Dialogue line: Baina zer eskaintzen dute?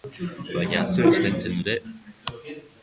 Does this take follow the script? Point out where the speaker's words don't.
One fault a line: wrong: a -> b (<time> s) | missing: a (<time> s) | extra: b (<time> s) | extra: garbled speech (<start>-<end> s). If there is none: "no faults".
no faults